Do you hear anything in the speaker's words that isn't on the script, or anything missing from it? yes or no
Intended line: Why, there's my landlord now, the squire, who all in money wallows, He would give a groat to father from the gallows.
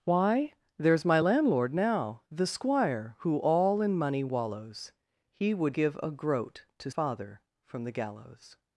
no